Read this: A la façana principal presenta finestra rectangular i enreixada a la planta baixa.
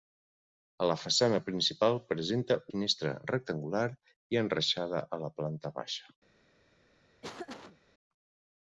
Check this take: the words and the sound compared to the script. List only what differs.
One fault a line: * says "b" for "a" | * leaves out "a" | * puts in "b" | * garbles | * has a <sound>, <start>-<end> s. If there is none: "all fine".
* has a laugh, 7.2-7.8 s